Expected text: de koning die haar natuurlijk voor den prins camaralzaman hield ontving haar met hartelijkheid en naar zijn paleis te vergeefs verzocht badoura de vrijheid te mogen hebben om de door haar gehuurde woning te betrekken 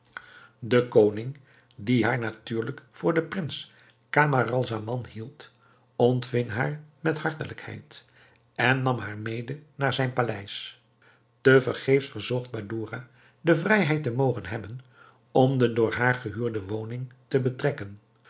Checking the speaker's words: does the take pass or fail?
fail